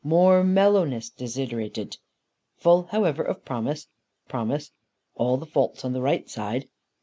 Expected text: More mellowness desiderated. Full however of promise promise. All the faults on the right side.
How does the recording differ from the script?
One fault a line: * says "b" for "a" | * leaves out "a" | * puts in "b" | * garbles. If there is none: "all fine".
all fine